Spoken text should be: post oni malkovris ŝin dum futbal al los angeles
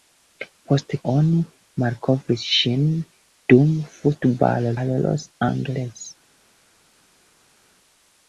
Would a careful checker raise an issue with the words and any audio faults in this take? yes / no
no